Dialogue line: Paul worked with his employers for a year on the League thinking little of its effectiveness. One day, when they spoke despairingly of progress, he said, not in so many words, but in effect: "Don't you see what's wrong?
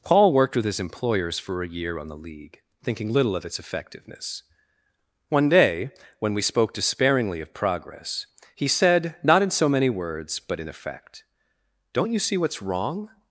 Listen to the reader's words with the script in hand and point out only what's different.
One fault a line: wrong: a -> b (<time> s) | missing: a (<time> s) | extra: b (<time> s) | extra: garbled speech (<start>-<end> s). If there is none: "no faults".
wrong: they -> we (6.3 s)